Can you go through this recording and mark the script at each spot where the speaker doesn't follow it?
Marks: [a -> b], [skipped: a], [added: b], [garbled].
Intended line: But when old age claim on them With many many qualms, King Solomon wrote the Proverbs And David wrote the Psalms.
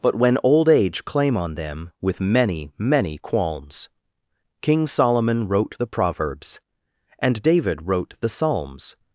But when old age claim on them With many many qualms, King Solomon wrote the Proverbs And David wrote the Psalms.